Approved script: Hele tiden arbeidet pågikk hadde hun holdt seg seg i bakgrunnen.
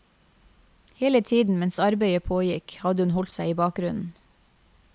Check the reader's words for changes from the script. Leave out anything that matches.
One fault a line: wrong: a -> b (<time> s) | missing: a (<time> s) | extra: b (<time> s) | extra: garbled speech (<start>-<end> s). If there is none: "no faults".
extra: mens (1.6 s)
missing: seg (3.5 s)